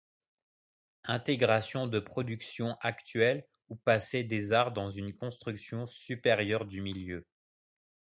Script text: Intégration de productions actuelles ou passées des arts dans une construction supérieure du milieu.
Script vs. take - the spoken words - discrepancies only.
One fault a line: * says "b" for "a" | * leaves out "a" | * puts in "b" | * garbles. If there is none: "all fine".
all fine